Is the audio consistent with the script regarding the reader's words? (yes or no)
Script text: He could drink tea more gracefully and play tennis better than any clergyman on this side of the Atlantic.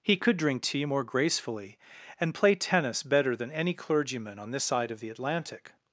yes